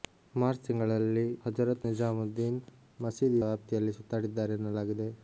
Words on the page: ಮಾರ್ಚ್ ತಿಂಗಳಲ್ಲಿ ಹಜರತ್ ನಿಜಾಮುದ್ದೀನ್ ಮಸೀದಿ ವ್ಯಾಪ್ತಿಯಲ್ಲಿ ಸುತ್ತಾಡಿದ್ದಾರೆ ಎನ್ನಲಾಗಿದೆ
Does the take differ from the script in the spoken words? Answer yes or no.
no